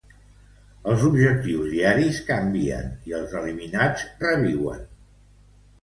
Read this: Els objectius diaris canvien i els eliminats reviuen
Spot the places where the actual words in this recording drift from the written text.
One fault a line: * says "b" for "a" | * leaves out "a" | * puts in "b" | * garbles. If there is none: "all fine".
all fine